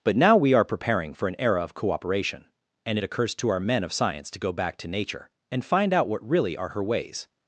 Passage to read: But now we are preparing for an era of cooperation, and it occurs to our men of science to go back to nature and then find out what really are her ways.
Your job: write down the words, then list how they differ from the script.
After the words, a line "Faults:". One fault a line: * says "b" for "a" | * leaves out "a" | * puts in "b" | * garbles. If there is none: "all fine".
But now we are preparing for an era of cooperation, and it occurs to our men of science to go back to nature and find out what really are her ways.
Faults:
* leaves out "then"